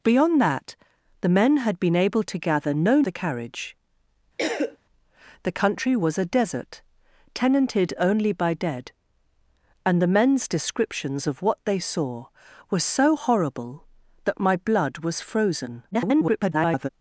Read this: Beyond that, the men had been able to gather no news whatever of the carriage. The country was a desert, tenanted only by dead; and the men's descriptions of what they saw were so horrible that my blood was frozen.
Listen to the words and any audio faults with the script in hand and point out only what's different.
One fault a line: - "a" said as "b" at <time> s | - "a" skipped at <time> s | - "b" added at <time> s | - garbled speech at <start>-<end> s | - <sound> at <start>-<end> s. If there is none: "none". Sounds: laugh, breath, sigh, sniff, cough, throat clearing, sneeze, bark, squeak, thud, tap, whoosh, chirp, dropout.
- "news whatever of" skipped at 3.0 s
- cough at 4.4-4.8 s
- garbled speech at 15.9-16.9 s